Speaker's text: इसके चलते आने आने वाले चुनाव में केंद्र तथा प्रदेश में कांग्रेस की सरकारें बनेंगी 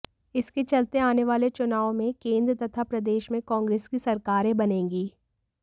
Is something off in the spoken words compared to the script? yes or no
yes